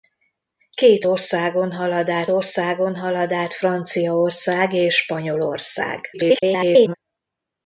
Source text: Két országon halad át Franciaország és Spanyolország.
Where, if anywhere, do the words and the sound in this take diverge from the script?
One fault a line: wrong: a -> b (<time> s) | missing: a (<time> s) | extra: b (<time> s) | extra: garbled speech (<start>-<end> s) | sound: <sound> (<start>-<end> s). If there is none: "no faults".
extra: országon halad át (2.3 s)
extra: garbled speech (6.1-6.9 s)